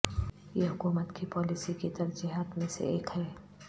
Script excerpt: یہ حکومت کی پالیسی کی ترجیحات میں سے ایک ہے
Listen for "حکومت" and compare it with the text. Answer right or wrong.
right